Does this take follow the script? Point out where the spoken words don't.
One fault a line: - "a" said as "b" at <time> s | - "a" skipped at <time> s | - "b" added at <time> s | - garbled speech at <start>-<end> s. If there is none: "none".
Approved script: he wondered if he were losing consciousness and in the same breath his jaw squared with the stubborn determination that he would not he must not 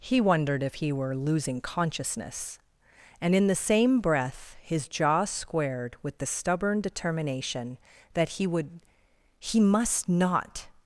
- "not" skipped at 8.8 s